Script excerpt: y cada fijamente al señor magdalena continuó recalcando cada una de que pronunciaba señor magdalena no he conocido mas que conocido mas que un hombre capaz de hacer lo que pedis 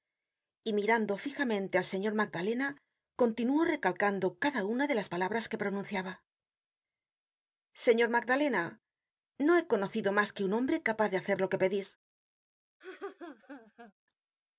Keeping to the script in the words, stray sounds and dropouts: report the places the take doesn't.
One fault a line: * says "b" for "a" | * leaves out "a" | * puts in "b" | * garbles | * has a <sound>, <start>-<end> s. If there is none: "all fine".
* says "mirando" for "cada"
* puts in "las palabras"
* leaves out "conocido mas que"
* has a laugh, 12.8-13.9 s